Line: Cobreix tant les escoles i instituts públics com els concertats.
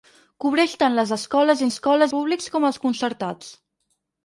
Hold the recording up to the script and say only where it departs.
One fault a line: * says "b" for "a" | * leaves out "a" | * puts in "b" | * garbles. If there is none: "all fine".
* says "escoles" for "instituts"